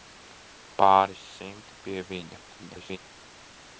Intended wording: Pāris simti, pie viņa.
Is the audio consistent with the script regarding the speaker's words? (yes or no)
no